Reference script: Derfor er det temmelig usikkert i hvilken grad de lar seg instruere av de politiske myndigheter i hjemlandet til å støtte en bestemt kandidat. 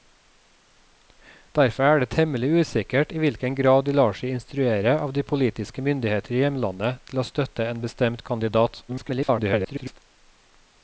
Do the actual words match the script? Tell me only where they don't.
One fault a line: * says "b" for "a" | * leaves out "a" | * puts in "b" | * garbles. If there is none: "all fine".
* garbles